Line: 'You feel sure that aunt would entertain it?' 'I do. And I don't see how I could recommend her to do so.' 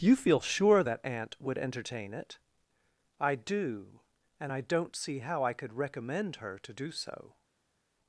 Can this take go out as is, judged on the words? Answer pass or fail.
pass